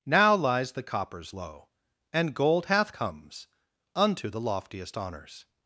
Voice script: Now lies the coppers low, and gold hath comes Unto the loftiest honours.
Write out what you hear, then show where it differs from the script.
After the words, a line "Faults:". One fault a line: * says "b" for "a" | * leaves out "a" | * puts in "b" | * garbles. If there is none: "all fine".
Now lies the coppers low, and gold hath comes Unto the loftiest honours.
Faults:
all fine